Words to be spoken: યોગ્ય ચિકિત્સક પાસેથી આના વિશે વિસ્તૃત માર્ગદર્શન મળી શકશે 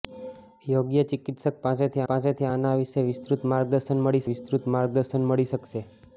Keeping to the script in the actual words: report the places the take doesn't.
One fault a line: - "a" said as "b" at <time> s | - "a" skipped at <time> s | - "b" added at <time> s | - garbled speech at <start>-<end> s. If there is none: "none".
- "પાસેથી" added at 2.1 s
- "વિસ્તૃત માર્ગદર્શન મળી" added at 4.3 s